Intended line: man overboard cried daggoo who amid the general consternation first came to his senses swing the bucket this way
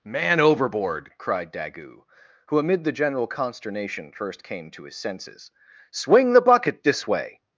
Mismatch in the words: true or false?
false